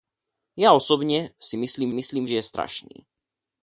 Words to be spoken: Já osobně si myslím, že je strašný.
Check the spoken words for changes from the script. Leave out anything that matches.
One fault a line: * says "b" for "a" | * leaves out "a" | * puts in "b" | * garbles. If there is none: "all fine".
* puts in "myslím"